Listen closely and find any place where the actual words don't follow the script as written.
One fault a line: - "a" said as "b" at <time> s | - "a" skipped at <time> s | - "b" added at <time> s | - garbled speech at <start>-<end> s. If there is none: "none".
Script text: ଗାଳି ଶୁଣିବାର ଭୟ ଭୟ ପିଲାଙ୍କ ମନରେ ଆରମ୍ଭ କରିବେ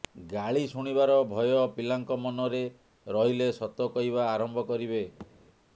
- "ଭୟ" skipped at 1.5 s
- "ରହିଲେ ସତ କହିବା" added at 3.1 s